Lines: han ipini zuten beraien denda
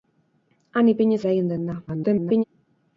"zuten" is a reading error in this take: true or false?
true